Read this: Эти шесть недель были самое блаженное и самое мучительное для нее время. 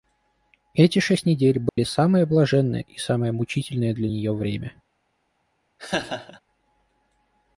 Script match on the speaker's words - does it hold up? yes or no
yes